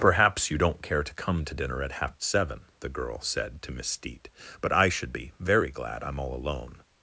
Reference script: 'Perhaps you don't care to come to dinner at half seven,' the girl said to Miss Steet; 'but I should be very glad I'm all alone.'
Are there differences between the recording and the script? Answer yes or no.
no